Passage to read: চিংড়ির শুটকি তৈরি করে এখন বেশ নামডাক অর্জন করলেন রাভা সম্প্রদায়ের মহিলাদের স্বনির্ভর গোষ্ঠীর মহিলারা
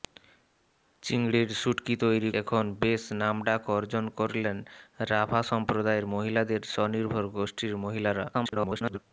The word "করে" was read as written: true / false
false